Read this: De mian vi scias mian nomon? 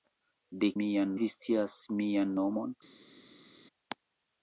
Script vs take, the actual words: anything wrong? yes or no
no